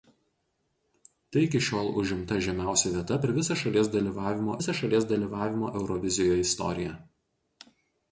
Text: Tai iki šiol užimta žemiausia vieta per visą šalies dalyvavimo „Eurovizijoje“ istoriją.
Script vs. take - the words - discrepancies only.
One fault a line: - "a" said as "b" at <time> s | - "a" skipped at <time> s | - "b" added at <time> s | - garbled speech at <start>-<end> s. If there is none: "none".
- "visą šalies dalyvavimo" added at 4.6 s